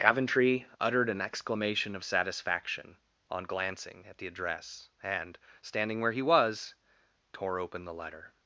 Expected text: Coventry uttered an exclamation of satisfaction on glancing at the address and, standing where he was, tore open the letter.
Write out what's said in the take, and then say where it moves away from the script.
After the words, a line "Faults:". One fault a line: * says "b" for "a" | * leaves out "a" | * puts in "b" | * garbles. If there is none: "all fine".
Coventry uttered an exclamation of satisfaction on glancing at the address and, standing where he was, tore open the letter.
Faults:
all fine